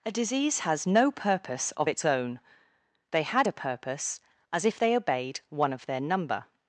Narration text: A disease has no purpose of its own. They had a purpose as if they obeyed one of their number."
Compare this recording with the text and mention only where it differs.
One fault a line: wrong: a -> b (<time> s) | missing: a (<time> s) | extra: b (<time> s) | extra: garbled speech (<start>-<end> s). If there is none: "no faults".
no faults